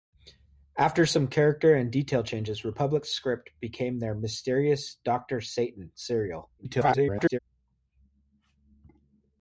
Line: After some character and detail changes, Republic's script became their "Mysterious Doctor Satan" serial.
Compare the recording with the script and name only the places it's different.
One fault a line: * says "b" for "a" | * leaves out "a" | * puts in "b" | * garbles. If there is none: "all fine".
* garbles